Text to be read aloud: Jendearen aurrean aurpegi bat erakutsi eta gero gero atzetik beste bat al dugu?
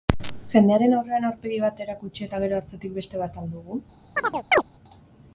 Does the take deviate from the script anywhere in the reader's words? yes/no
yes